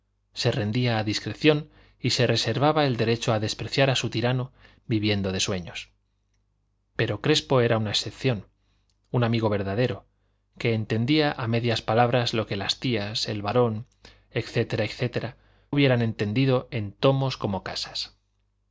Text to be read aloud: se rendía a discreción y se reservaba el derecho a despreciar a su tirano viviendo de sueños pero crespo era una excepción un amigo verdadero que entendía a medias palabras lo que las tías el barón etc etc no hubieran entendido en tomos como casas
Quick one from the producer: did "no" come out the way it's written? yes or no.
no